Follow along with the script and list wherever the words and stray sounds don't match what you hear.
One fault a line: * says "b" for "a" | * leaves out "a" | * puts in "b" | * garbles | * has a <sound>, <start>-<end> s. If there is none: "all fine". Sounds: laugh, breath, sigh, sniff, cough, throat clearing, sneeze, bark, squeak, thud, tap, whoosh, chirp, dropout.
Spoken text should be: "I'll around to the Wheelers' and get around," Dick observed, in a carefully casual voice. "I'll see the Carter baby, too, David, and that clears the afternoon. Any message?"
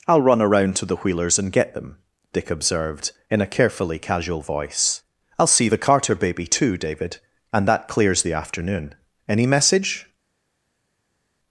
* puts in "run"
* says "them" for "around"